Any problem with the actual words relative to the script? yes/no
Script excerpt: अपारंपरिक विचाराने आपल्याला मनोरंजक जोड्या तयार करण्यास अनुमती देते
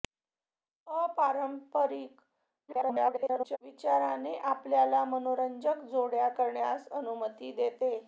yes